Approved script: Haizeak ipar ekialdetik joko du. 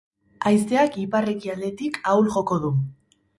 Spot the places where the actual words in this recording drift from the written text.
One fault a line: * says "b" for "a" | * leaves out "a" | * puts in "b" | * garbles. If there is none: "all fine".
* puts in "ahul"